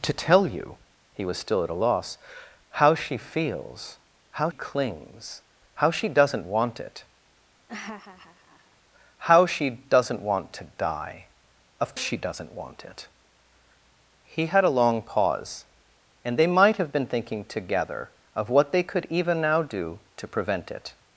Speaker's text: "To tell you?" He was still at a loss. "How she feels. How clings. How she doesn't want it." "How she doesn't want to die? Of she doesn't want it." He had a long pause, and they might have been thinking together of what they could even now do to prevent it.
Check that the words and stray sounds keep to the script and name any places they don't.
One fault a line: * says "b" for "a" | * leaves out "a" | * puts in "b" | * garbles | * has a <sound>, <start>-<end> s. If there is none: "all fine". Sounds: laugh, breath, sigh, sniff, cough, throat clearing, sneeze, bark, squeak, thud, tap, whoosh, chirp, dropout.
* has a laugh, 7.7-8.8 s